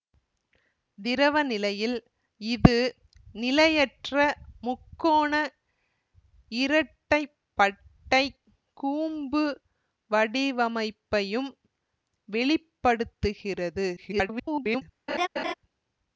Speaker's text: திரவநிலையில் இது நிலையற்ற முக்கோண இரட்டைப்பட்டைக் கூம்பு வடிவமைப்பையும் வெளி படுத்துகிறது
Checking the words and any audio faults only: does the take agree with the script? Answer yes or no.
no